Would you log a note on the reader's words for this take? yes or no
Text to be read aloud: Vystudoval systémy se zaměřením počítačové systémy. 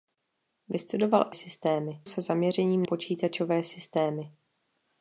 no